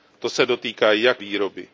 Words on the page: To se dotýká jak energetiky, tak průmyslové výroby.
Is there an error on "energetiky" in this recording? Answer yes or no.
yes